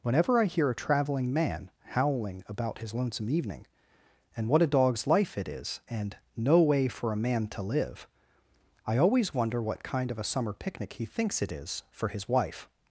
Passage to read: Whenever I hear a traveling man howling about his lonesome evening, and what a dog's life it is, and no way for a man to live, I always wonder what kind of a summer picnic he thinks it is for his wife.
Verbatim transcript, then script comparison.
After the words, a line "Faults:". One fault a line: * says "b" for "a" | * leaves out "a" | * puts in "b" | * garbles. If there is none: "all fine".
Whenever I hear a traveling man howling about his lonesome evening, and what a dog's life it is, and no way for a man to live, I always wonder what kind of a summer picnic he thinks it is for his wife.
Faults:
all fine